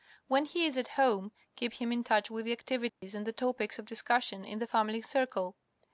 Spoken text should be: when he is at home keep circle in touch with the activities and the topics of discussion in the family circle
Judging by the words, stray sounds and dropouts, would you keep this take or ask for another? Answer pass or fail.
fail